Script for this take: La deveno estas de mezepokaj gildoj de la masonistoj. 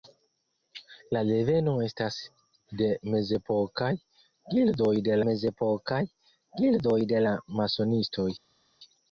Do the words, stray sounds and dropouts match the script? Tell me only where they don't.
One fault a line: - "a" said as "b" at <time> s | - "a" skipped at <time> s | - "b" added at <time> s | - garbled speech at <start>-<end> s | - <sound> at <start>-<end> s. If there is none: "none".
- "mezepokaj gildoj de" added at 5.3 s